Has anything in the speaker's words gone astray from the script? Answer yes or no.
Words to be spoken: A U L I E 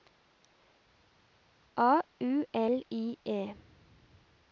no